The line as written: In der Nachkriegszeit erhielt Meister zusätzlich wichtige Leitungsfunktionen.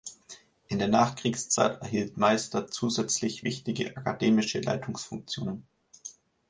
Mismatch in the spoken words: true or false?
true